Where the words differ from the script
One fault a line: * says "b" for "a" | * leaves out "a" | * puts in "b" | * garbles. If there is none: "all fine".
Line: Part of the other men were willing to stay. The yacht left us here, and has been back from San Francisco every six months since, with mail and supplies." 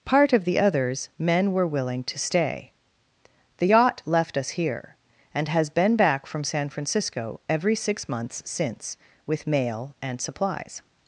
* says "others" for "other"